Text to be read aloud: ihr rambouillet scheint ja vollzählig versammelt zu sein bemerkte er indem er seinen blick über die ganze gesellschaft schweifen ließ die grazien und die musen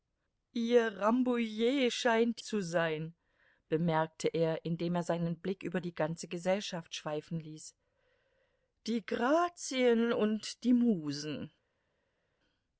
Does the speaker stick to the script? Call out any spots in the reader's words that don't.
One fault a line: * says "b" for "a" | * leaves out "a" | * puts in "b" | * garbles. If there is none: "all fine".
* leaves out "ja vollzählig versammelt"